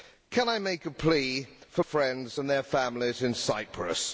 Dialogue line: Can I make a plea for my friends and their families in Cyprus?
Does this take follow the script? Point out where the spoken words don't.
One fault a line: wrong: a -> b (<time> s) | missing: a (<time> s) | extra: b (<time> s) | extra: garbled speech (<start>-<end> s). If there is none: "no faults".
missing: my (1.8 s)